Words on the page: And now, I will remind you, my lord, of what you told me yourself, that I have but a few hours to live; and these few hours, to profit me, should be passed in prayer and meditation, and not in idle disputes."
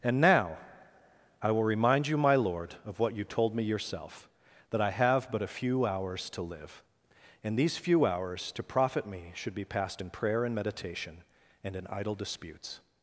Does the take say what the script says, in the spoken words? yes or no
no